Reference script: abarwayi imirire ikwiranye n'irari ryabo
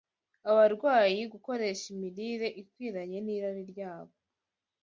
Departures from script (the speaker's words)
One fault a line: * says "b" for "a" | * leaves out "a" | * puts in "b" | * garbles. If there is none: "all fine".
* puts in "gukoresha"